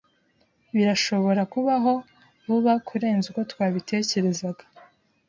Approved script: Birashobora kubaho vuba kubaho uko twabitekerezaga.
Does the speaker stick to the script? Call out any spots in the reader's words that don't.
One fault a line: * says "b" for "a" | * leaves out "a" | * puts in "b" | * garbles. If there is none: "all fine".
* says "kurenza" for "kubaho"